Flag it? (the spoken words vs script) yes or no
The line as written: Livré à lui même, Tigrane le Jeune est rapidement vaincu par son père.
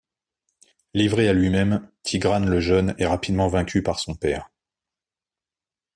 no